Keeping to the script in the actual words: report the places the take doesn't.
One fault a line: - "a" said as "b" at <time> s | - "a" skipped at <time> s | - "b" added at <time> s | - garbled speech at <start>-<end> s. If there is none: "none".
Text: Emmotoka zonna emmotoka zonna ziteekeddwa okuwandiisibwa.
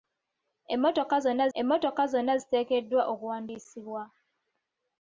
none